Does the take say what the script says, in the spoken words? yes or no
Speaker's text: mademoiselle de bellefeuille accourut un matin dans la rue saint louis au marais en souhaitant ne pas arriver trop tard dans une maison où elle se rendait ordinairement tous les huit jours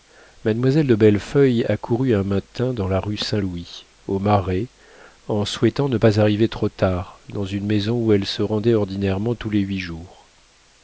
yes